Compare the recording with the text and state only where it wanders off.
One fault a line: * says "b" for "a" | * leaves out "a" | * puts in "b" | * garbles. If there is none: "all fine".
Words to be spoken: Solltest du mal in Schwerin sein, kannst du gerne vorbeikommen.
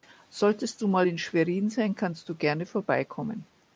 all fine